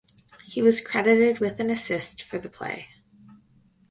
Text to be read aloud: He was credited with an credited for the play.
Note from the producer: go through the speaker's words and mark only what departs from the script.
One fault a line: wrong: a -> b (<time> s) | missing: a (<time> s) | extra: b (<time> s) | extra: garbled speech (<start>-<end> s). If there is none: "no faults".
wrong: credited -> assist (1.7 s)